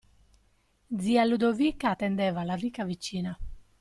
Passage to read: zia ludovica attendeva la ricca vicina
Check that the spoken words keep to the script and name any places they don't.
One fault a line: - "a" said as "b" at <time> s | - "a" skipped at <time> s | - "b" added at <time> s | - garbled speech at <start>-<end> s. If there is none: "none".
none